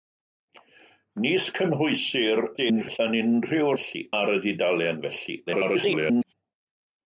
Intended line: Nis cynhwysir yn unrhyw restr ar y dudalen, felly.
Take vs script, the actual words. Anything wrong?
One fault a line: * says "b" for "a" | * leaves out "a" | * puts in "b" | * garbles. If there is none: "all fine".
* garbles
* says "felly" for "restr"
* garbles